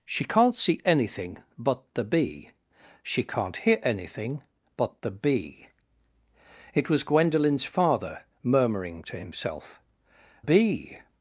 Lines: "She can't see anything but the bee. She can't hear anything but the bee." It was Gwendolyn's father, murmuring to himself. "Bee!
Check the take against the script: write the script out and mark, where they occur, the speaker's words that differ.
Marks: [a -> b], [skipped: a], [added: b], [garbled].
"She can't see anything but the bee. She can't hear anything but the bee." It was Gwendolyn's father, murmuring to himself. "Bee!